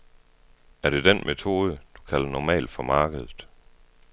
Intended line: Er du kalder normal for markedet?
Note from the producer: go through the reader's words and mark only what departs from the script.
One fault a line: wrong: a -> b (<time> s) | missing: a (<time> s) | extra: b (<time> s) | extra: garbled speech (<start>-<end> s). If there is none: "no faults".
extra: det den metode (0.9 s)